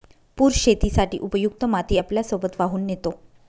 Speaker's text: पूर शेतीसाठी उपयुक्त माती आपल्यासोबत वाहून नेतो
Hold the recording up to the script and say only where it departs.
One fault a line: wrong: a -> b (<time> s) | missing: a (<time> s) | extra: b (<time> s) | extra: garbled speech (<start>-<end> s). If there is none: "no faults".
no faults